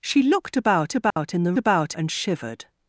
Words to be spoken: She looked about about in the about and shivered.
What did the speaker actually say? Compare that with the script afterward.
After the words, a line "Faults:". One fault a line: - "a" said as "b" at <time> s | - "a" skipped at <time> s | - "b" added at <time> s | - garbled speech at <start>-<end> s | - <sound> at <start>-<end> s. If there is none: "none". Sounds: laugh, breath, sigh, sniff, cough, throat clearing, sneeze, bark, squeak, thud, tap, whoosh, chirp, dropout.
She looked about about in the about and shivered.
Faults:
- dropout at 1.1-1.2 s